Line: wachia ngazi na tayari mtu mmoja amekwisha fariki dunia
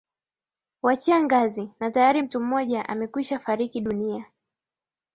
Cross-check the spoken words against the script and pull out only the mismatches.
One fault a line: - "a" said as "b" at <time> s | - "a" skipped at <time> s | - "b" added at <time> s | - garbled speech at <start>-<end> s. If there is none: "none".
none